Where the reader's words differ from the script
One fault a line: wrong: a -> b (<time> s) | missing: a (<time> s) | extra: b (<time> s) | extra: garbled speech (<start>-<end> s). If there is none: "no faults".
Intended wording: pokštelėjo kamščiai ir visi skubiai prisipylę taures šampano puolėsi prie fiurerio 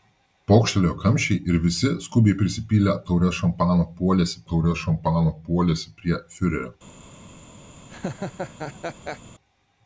extra: taures šampano puolėsi (4.5 s)